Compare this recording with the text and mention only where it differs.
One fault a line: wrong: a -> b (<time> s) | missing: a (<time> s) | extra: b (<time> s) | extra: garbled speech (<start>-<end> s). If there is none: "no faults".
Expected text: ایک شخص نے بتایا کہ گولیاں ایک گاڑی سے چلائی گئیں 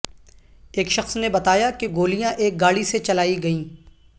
no faults